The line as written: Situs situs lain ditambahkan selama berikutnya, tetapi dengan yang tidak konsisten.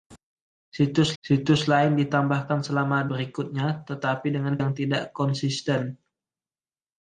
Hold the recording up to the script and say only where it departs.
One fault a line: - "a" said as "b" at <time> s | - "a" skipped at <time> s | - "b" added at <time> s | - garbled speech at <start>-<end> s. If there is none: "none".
none